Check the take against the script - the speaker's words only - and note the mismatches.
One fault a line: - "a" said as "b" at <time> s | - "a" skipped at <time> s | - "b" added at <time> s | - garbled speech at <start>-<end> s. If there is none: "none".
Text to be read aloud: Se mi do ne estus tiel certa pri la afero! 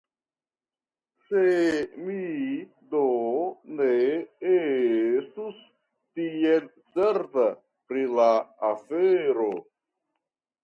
none